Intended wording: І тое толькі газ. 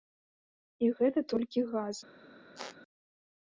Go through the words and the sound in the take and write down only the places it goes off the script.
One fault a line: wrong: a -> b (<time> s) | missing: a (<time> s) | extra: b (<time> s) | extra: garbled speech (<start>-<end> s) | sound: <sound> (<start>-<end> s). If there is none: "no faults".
wrong: тое -> гэта (1.0 s)
sound: squeak (2.6-2.8 s)